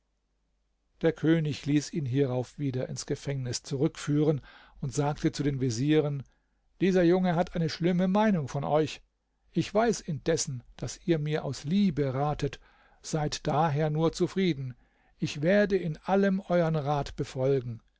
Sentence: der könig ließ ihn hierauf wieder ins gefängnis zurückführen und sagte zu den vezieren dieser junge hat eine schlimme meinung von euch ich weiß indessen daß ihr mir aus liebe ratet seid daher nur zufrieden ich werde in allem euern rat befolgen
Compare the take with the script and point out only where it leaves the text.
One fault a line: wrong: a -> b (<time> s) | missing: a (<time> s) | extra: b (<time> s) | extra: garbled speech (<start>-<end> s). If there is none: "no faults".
no faults